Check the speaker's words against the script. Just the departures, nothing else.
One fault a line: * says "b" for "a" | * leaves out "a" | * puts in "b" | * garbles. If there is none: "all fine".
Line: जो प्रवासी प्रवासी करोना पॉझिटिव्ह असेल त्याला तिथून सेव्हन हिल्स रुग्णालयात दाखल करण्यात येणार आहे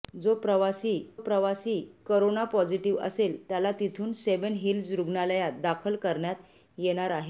all fine